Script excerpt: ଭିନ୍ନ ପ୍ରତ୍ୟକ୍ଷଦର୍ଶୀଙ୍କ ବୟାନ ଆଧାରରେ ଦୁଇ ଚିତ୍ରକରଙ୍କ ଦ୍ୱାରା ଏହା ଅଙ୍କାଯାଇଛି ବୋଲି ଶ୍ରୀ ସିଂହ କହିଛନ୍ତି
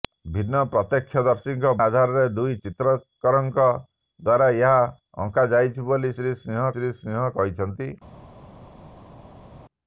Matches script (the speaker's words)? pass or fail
fail